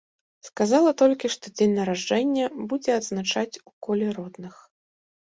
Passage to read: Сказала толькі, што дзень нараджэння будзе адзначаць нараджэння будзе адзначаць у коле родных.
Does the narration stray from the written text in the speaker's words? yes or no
yes